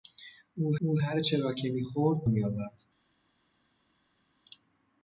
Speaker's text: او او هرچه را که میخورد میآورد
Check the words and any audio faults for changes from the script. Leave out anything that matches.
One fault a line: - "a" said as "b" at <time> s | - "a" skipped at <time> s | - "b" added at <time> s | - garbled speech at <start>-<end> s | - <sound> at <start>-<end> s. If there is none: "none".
none